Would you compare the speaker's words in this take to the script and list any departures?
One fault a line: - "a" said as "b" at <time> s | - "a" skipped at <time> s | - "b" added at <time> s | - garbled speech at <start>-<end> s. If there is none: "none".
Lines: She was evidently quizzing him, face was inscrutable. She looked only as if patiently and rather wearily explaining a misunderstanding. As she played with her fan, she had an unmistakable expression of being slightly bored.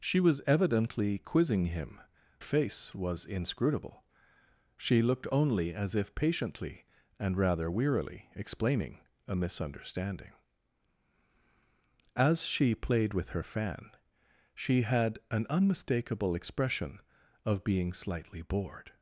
none